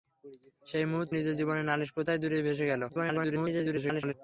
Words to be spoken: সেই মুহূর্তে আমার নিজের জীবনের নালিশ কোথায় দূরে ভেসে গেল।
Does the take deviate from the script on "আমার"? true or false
true